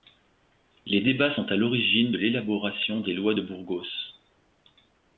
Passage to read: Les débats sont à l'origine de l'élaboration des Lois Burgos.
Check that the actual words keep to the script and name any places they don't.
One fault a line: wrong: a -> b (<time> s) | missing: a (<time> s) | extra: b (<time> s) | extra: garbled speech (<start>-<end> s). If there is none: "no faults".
extra: de (3.3 s)